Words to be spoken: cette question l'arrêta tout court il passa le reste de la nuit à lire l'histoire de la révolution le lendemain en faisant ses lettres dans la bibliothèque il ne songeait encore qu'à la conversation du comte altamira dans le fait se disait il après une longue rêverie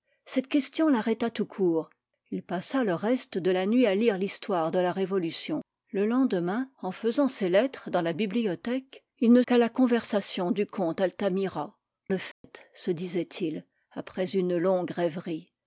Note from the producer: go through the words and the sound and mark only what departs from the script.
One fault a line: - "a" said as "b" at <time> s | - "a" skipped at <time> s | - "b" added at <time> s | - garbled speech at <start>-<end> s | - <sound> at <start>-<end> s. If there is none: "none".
- "songeait encore" skipped at 9.4 s
- "dans" skipped at 11.8 s
- dropout at 12.3-12.4 s